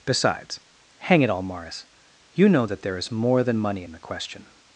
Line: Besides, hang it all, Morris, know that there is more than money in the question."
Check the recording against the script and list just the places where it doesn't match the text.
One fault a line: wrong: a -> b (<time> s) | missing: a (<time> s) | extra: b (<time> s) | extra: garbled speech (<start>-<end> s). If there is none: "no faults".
extra: you (2.3 s)